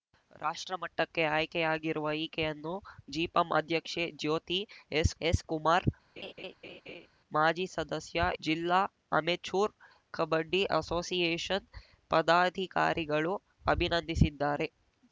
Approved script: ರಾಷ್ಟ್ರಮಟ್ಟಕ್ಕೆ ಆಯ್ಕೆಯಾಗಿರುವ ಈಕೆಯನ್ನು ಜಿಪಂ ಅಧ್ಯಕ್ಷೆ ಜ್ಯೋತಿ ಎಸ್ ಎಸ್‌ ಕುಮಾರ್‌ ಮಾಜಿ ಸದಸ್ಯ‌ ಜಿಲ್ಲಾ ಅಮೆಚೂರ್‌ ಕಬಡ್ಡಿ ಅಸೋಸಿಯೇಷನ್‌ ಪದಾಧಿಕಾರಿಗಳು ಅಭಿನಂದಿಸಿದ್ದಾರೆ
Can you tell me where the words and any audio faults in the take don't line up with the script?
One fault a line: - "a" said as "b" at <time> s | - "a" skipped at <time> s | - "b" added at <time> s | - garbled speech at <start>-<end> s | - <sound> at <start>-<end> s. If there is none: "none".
- laugh at 6.2-7.1 s